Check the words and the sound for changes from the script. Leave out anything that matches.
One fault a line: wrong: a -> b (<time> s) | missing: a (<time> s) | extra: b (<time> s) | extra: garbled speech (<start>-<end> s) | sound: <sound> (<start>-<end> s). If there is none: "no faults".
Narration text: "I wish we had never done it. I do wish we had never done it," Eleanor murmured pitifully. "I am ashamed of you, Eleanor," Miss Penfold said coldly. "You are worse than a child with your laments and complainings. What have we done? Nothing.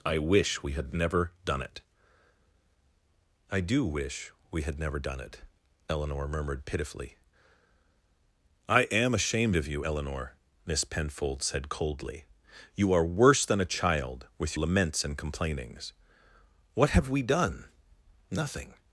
missing: your (14.5 s)